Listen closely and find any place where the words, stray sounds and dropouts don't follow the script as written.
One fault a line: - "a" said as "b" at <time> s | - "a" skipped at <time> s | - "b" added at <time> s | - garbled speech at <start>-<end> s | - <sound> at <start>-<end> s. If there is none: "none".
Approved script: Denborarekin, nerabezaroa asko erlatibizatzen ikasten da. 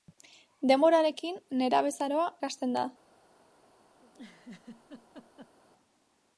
- "asko erlatibizatzen" skipped at 2.2 s
- laugh at 4.0-5.5 s